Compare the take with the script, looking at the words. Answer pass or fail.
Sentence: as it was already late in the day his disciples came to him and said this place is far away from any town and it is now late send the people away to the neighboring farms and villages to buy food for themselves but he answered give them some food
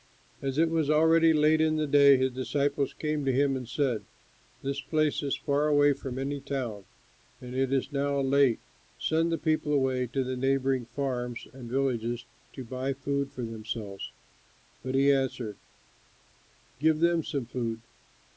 pass